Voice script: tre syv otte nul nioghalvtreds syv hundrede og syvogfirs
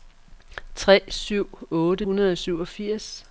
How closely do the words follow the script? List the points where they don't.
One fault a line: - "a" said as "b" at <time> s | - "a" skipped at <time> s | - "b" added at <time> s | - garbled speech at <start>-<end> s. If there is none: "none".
- "nul nioghalvtreds syv" skipped at 2.0 s